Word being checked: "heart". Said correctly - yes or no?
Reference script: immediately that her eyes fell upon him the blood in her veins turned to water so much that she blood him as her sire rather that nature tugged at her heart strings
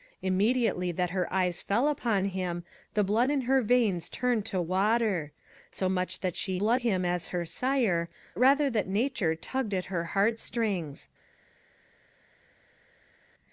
yes